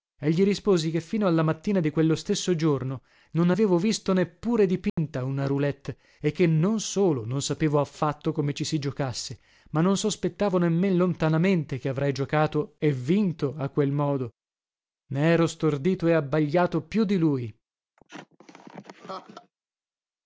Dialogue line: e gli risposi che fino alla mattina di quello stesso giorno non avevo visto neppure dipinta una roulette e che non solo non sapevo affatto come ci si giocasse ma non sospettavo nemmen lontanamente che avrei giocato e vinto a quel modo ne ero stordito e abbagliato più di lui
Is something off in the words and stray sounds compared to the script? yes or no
yes